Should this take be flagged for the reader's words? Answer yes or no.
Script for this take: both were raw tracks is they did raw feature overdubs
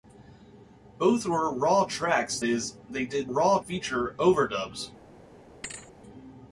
no